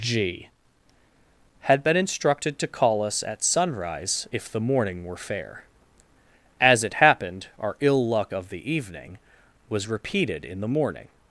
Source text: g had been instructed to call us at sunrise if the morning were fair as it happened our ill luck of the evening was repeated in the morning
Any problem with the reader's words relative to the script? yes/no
no